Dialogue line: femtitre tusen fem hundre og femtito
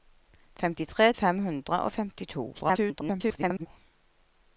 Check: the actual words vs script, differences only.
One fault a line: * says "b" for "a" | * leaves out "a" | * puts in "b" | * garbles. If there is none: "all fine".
* leaves out "tusen"
* garbles